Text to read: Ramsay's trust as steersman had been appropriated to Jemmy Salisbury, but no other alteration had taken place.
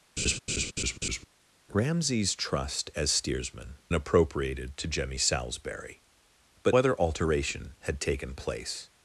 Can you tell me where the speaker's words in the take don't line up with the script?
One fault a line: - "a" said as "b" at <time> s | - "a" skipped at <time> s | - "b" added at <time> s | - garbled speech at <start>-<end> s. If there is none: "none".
- "had been" skipped at 3.8 s
- "no" skipped at 6.8 s